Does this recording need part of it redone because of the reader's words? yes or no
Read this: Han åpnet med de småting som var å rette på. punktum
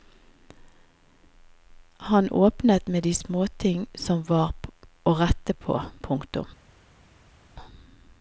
no